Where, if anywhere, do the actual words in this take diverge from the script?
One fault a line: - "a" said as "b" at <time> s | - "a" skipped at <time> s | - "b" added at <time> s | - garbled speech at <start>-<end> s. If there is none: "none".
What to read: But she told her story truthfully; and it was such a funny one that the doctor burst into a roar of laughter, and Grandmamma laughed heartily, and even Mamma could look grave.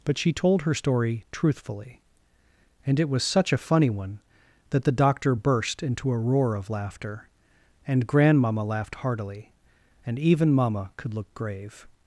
none